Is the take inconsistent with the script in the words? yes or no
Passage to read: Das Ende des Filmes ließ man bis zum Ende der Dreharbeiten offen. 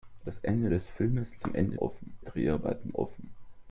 yes